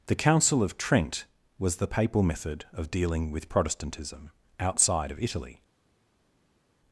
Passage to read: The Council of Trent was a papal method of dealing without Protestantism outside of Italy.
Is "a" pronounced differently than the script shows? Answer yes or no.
yes